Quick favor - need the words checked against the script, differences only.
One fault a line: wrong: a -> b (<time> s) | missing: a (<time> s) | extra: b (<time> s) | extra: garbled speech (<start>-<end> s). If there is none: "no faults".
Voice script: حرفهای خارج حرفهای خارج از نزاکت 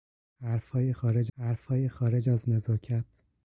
no faults